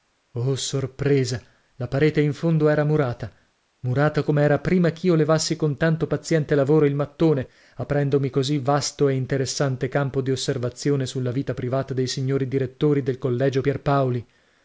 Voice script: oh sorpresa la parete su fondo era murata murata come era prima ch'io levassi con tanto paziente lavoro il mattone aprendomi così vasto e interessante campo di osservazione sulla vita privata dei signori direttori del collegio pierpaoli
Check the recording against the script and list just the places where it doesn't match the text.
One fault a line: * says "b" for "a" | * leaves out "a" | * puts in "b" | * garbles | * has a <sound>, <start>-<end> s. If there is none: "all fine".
* says "in" for "su"